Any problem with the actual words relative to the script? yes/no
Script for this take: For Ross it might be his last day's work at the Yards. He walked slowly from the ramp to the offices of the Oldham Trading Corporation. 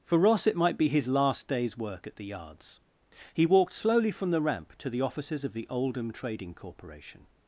no